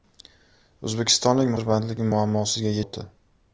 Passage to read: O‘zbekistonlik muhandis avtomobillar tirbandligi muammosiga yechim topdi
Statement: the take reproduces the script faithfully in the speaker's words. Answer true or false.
false